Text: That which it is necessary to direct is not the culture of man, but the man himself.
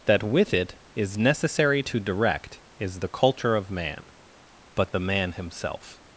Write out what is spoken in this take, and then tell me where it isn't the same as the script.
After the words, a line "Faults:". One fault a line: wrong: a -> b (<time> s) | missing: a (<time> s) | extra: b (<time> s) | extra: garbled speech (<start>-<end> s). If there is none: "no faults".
That with it is necessary to direct is the culture of man, but the man himself.
Faults:
wrong: which -> with (0.2 s)
missing: not (3.0 s)